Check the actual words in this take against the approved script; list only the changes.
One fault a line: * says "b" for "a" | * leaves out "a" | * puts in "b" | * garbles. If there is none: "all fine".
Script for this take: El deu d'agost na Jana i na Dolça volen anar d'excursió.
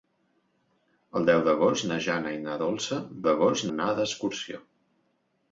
* says "d'agost" for "volen"